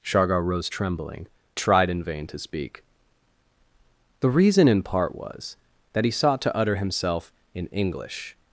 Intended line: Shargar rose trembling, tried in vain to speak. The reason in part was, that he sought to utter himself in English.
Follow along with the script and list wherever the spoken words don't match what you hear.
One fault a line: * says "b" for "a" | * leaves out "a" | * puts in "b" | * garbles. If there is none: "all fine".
all fine